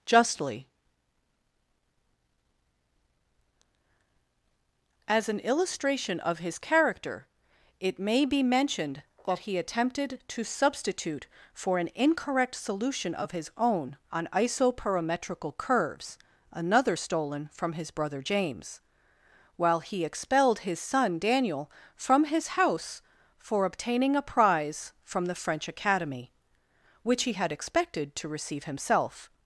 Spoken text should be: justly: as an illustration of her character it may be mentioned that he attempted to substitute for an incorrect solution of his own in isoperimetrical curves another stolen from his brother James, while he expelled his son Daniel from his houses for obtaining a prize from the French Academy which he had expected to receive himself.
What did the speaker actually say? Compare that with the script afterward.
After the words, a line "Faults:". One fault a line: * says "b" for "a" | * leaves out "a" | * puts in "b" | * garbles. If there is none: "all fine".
justly: as an illustration of his character it may be mentioned that he attempted to substitute for an incorrect solution of his own on isoperimetrical curves another stolen from his brother James, while he expelled his son Daniel from his house for obtaining a prize from the French Academy which he had expected to receive himself.
Faults:
* says "his" for "her"
* says "on" for "in"
* says "house" for "houses"